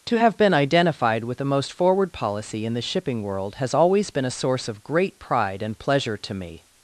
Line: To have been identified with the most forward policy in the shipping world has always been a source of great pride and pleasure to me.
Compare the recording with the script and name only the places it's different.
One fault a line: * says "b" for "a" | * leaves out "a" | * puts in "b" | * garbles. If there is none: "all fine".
all fine